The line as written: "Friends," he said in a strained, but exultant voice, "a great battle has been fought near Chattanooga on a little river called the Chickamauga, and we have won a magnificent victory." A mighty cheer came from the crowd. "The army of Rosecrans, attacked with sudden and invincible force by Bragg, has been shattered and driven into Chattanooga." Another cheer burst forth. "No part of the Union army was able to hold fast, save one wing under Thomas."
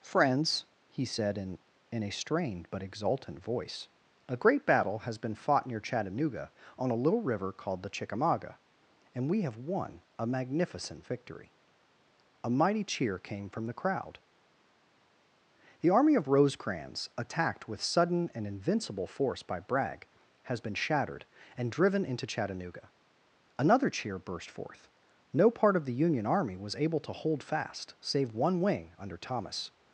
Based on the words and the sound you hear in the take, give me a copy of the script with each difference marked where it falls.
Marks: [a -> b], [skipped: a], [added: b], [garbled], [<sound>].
"Friends," he said in [added: in] a strained, but exultant voice, "a great battle has been fought near Chattanooga on a little river called the Chickamauga, and we have won a magnificent victory." A mighty cheer came from the crowd. "The army of Rosecrans, attacked with sudden and invincible force by Bragg, has been shattered and driven into Chattanooga." Another cheer burst forth. "No part of the Union army was able to hold fast, save one wing under Thomas."